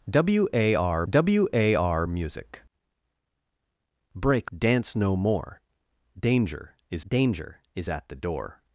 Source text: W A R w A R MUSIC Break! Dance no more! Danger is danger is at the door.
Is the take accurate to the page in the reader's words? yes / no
yes